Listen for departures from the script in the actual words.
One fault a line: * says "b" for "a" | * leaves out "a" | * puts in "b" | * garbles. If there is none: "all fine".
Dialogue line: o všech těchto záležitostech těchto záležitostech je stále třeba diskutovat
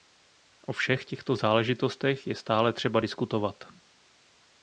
* leaves out "těchto záležitostech"